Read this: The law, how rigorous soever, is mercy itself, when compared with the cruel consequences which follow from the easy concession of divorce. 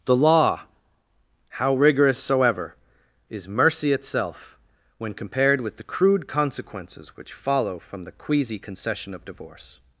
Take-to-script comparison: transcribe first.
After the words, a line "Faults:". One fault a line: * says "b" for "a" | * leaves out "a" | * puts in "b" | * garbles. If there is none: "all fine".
The law, how rigorous soever, is mercy itself, when compared with the crude consequences which follow from the queasy concession of divorce.
Faults:
* says "crude" for "cruel"
* says "queasy" for "easy"